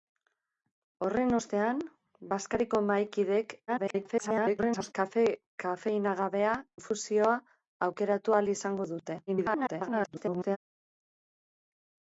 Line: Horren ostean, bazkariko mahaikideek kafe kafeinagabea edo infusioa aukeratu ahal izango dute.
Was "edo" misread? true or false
true